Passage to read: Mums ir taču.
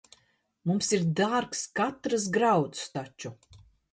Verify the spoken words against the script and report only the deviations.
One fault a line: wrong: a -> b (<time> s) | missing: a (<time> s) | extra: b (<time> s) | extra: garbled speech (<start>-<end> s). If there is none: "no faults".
extra: dārgs katrs grauds (1.2 s)